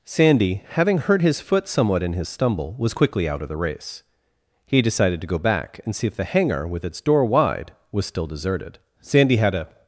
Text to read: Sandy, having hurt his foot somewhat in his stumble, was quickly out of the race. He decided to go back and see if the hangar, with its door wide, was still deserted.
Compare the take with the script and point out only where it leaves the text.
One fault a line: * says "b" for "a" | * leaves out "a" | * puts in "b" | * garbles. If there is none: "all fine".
* puts in "Sandy had a"